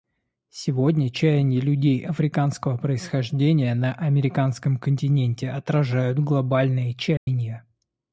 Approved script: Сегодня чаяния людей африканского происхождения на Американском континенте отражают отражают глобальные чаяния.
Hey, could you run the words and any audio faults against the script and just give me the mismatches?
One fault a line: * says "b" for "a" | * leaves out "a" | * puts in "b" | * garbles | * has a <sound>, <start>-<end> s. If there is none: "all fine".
* leaves out "отражают"
* has a dropout, 7.2-7.3 s